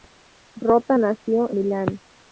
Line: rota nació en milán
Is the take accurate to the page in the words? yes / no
no